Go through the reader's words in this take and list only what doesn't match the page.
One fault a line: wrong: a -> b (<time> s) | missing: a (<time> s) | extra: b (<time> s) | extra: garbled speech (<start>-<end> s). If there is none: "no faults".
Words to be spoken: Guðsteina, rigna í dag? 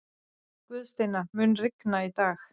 extra: mun (1.4 s)